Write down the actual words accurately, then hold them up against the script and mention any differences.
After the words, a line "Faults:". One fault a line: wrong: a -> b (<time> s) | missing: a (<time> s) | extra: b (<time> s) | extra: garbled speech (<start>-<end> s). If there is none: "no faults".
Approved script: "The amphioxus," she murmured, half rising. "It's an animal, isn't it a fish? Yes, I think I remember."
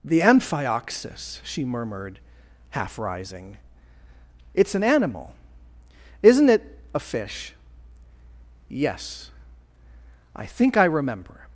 "The amphioxus," she murmured, half rising. "It's an animal, isn't it a fish? Yes, I think I remember."
Faults:
no faults